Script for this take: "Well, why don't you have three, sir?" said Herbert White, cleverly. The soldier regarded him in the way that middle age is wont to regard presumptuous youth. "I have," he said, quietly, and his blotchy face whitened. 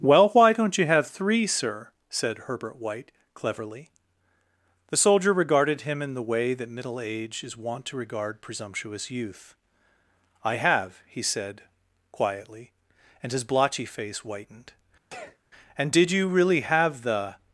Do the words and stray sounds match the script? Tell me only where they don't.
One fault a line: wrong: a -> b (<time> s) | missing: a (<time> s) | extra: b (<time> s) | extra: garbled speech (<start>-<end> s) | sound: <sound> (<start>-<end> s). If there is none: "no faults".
sound: sneeze (15.1-15.4 s)
extra: And did you really have the (15.8 s)